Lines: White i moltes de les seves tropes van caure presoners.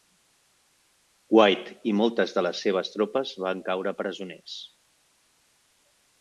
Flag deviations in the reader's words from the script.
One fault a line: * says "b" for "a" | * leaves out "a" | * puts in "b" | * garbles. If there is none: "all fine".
all fine